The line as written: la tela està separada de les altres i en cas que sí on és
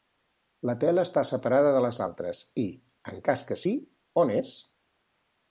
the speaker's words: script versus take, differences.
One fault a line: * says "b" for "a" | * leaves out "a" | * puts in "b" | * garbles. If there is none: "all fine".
all fine